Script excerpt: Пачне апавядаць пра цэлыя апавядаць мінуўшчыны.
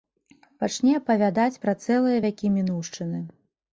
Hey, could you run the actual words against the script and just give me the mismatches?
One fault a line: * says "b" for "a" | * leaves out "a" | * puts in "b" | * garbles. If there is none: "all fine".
* says "вякі" for "апавядаць"